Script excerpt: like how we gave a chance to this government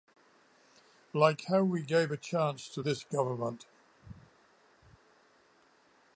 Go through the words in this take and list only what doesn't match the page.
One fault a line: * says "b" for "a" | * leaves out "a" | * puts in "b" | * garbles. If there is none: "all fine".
all fine